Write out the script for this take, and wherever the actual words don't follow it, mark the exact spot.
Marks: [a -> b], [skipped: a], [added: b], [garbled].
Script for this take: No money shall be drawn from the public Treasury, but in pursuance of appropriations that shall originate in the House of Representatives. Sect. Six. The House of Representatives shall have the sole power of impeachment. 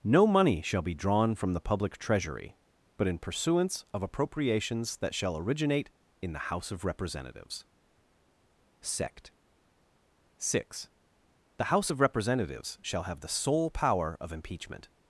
No money shall be drawn from the public Treasury, but in pursuance of appropriations that shall originate in the House of Representatives. Sect. Six. The House of Representatives shall have the sole power of impeachment.